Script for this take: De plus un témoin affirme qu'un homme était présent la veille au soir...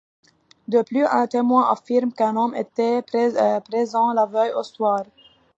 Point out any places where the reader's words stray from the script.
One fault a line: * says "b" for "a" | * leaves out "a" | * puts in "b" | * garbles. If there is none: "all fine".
all fine